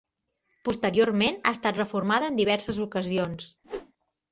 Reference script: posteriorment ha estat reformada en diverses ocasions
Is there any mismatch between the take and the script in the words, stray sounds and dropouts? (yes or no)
yes